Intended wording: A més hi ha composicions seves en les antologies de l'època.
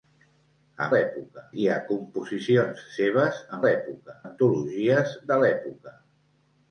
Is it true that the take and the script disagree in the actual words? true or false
true